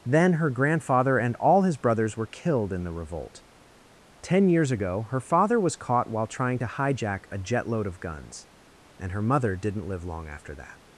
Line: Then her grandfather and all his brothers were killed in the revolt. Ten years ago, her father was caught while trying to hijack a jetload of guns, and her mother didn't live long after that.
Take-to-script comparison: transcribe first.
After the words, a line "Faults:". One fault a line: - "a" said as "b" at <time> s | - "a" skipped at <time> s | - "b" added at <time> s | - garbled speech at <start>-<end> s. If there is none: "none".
Then her grandfather and all his brothers were killed in the revolt. Ten years ago, her father was caught while trying to hijack a jetload of guns, and her mother didn't live long after that.
Faults:
none